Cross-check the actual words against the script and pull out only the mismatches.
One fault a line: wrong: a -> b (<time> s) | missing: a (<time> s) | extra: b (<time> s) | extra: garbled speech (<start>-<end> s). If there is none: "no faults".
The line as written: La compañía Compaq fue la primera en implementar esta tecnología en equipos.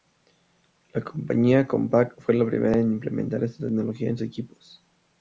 no faults